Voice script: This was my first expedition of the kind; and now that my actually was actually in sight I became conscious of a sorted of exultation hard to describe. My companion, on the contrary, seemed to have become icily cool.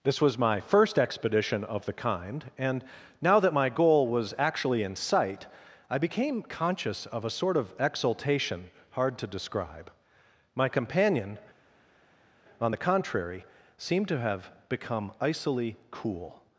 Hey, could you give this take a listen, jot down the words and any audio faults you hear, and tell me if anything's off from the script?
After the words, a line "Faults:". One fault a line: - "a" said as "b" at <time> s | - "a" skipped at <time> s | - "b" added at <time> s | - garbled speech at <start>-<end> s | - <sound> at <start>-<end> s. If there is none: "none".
This was my first expedition of the kind; and now that my goal was actually in sight I became conscious of a sort of exultation hard to describe. My companion, on the contrary, seemed to have become icily cool.
Faults:
- "actually" said as "goal" at 3.7 s
- "sorted" said as "sort" at 7.3 s